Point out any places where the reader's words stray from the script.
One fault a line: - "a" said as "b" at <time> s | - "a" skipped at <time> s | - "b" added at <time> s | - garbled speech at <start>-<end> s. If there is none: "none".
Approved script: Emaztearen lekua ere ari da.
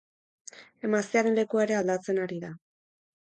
- "aldatzen" added at 1.8 s